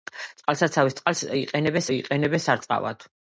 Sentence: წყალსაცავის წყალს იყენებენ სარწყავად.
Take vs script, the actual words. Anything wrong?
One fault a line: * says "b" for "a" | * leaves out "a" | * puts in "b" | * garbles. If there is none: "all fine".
* puts in "იყენებენ"